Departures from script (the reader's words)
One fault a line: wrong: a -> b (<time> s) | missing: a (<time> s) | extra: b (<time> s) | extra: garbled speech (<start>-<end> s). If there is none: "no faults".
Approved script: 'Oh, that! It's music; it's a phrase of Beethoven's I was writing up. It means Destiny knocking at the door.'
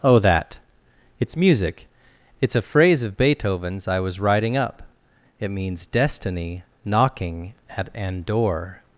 wrong: the -> an (7.9 s)